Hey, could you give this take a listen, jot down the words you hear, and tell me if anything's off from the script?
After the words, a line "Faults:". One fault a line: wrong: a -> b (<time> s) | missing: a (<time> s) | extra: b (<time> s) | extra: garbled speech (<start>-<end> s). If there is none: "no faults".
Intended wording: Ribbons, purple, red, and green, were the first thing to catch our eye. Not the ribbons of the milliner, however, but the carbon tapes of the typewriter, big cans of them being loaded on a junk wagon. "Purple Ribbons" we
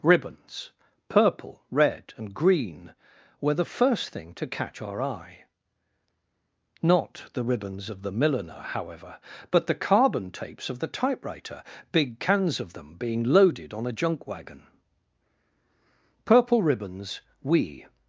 Ribbons, purple, red, and green, were the first thing to catch our eye. Not the ribbons of the milliner, however, but the carbon tapes of the typewriter, big cans of them being loaded on a junk wagon. "Purple Ribbons" we
Faults:
no faults